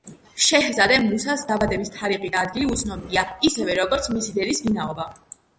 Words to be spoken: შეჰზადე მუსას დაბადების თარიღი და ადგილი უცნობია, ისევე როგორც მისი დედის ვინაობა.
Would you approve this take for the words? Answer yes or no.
yes